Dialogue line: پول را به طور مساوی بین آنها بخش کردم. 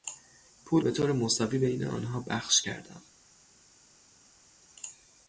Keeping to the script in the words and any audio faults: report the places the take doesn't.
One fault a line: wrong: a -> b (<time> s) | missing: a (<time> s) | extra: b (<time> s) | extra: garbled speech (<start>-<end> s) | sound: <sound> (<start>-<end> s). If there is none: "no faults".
missing: را (0.8 s)